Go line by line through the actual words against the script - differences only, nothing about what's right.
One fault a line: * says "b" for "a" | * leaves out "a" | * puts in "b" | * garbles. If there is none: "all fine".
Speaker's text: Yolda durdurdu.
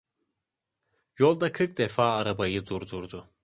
* puts in "kırk defa arabayı"